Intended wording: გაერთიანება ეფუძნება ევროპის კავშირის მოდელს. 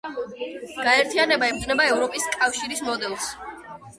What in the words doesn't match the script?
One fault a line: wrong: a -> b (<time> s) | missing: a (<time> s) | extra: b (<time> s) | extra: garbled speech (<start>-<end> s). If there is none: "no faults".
no faults